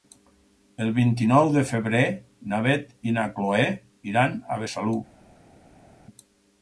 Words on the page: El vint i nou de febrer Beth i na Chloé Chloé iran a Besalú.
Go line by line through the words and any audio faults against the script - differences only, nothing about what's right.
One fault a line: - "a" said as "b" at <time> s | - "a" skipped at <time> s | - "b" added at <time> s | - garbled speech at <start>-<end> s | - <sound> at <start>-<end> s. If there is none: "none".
- "na" added at 2.5 s
- "Chloé" skipped at 3.7 s